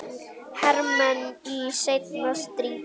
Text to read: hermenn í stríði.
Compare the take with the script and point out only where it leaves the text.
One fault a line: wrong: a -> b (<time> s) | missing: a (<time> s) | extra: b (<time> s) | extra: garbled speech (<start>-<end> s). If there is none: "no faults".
extra: seinna (1.8 s)